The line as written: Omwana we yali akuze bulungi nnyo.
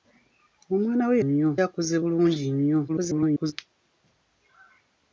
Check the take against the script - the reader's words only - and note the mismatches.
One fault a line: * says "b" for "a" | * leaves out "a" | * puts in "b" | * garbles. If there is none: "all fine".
* says "nnyo" for "yali"
* garbles